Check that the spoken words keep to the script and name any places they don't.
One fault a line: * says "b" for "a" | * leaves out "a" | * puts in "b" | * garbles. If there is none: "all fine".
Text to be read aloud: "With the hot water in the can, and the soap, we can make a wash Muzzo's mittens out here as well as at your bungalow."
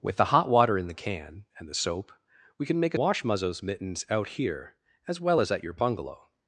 all fine